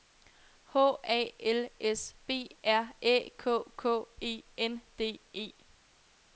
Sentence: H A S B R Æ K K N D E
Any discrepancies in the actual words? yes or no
yes